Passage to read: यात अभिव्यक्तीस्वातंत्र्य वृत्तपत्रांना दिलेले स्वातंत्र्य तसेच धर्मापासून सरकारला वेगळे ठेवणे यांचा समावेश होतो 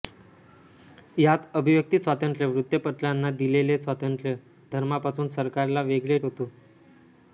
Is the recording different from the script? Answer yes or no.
yes